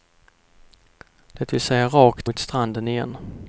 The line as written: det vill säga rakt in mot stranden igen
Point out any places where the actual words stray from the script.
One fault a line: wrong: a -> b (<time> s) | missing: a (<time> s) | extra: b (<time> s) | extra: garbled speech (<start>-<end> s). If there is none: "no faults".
missing: in (2.3 s)